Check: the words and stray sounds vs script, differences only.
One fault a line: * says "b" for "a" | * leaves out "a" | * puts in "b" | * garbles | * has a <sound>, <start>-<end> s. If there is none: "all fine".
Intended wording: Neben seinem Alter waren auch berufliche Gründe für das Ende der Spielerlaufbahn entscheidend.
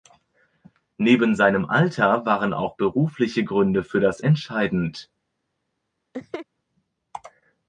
* leaves out "Ende der Spielerlaufbahn"
* has a laugh, 6.1-6.5 s